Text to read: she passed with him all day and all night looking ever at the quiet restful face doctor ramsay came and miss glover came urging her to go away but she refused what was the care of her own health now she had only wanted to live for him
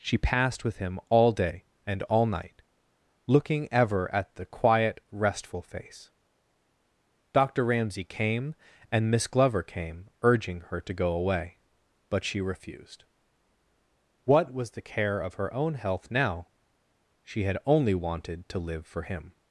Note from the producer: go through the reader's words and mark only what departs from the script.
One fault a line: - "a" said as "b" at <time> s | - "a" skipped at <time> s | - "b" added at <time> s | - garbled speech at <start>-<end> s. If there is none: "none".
none